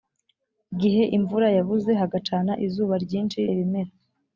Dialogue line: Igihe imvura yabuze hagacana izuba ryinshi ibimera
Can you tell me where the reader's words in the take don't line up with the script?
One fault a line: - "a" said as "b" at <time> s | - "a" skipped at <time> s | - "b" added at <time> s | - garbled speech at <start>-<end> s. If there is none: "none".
none